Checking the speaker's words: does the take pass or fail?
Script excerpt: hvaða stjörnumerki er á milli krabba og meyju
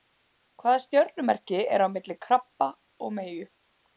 pass